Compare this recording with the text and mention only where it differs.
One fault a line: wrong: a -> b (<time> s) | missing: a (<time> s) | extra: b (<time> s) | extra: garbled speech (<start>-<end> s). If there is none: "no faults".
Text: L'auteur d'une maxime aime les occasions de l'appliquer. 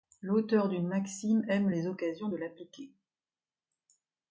no faults